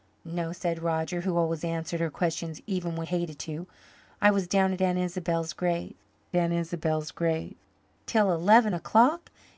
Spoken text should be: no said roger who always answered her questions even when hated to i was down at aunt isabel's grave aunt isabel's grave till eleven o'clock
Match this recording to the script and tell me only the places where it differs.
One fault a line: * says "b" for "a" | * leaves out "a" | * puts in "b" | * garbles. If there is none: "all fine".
all fine